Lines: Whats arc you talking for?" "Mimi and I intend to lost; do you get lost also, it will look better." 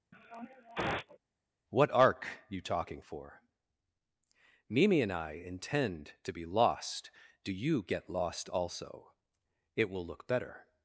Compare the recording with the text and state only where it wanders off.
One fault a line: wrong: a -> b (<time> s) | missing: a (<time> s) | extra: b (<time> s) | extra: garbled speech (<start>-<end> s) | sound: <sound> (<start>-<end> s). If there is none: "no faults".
sound: sniff (0.1-1.2 s)
wrong: Whats -> What (1.7 s)
extra: be (6.3 s)